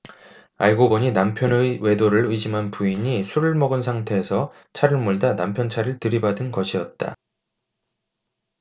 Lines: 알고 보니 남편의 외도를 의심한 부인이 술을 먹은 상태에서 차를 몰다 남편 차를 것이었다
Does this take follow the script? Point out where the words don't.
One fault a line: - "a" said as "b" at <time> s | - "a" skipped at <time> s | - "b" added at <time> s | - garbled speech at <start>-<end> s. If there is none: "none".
- "들이받은" added at 6.0 s